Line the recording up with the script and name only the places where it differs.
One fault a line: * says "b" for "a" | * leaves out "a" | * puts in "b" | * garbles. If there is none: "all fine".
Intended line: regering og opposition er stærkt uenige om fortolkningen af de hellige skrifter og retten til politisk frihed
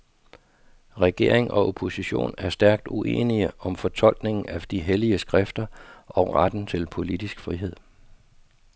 all fine